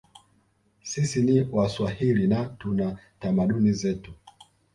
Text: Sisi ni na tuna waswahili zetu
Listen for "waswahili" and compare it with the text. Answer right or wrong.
wrong